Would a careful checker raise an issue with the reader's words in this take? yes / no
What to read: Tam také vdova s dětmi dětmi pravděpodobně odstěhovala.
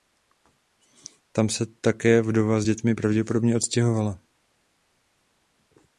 yes